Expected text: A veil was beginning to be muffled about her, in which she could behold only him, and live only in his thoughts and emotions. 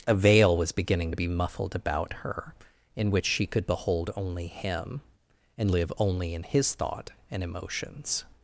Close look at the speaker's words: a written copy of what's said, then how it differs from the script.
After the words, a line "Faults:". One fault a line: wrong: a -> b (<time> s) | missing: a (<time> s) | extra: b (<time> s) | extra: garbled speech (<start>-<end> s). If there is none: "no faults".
A veil was beginning to be muffled about her, in which she could behold only him, and live only in his thought and emotions.
Faults:
wrong: thoughts -> thought (6.7 s)